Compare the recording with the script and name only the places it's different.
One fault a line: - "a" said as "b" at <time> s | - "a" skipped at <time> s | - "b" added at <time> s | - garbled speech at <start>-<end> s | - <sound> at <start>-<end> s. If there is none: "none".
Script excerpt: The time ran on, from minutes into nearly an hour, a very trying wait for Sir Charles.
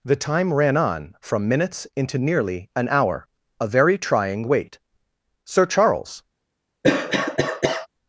- "for" skipped at 4.8 s
- cough at 6.8-7.9 s